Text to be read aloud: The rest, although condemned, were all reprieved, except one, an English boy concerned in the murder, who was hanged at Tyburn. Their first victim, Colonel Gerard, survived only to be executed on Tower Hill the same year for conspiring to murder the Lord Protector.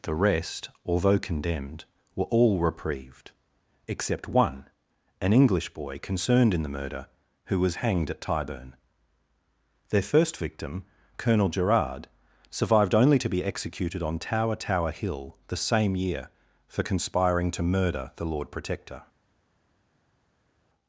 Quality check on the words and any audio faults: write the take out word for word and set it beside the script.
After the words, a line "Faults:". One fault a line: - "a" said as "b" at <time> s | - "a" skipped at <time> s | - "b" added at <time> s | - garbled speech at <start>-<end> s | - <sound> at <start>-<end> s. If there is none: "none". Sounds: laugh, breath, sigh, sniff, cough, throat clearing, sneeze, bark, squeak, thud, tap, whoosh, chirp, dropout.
The rest, although condemned, were all reprieved, except one, an English boy concerned in the murder, who was hanged at Tyburn. Their first victim, Colonel Gerard, survived only to be executed on Tower Tower Hill the same year for conspiring to murder the Lord Protector.
Faults:
- "Tower" added at 14.5 s